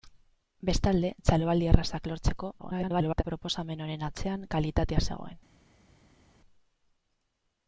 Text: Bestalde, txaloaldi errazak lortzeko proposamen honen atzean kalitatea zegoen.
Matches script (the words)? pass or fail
fail